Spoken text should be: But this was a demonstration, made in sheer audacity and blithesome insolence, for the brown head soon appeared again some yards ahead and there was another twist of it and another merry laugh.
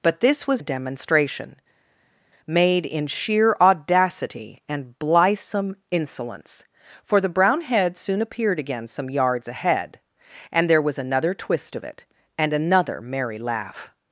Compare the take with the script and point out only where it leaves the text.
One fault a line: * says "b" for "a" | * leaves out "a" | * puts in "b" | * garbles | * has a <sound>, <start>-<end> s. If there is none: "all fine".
all fine